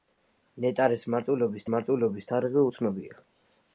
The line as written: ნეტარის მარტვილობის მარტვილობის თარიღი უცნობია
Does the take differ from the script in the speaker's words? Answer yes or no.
no